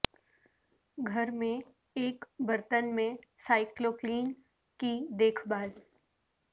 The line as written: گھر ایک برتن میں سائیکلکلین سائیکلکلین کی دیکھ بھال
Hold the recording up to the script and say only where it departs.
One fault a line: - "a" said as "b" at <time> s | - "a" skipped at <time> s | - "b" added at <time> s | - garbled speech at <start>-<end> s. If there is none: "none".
- "میں" added at 1.3 s
- "سائیکلکلین" skipped at 4.3 s